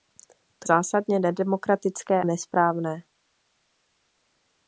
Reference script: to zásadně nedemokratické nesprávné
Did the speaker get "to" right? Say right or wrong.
right